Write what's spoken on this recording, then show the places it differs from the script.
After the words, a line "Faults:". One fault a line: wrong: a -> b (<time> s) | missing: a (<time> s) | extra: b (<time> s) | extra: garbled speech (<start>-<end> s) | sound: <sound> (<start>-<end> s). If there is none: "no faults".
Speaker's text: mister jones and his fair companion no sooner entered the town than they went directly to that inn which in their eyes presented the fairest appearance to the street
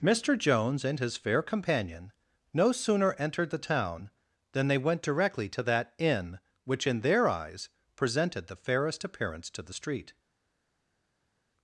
mister jones and his fair companion no sooner entered the town than they went directly to that inn which in their eyes presented the fairest appearance to the street
Faults:
no faults